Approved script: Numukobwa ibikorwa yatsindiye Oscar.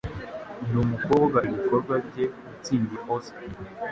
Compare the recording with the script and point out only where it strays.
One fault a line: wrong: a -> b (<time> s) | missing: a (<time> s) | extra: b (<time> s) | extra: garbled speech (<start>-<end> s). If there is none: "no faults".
extra: bye (2.1 s)